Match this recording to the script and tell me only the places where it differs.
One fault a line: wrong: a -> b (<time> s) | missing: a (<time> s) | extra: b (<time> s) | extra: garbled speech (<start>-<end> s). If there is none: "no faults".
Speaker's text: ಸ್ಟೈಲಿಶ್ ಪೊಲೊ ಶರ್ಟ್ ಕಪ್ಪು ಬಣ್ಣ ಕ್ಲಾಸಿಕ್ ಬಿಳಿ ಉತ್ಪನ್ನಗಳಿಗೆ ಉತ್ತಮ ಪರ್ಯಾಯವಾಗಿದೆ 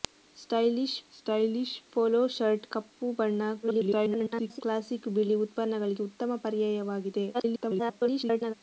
extra: ಸ್ಟೈಲಿಶ್ (1.1 s)
extra: garbled speech (3.6-4.6 s)
extra: garbled speech (7.3-8.5 s)